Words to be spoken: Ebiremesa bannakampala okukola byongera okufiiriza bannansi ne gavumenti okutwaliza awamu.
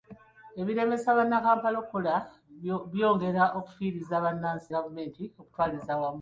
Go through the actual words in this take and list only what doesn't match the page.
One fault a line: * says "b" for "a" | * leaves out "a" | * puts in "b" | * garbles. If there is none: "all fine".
* leaves out "ne"